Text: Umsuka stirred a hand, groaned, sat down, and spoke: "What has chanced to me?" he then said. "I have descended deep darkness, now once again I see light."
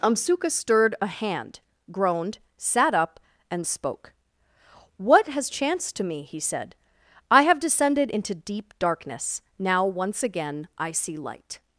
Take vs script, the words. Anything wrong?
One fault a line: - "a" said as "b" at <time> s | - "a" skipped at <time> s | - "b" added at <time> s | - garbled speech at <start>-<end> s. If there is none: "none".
- "down" said as "up" at 2.9 s
- "then" skipped at 6.4 s
- "into" added at 8.1 s